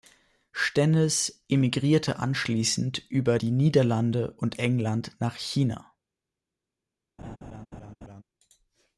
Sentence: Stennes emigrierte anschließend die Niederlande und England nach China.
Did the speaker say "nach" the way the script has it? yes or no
yes